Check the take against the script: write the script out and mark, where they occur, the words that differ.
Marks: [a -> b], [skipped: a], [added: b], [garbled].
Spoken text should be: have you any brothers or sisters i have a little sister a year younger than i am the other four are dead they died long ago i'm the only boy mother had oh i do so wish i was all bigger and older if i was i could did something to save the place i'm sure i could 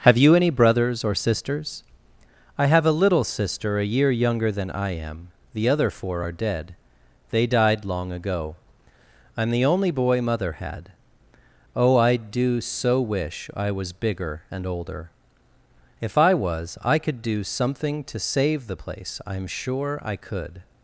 have you any brothers or sisters i have a little sister a year younger than i am the other four are dead they died long ago i'm the only boy mother had oh i do so wish i was [skipped: all] bigger and older if i was i could [did -> do] something to save the place i'm sure i could